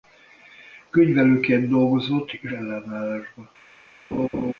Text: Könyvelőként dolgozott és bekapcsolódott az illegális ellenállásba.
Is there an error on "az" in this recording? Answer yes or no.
yes